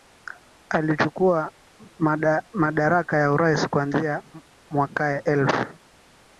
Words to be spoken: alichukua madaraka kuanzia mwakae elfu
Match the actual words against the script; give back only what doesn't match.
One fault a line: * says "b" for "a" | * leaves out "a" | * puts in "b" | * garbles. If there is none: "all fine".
* puts in "ya urais"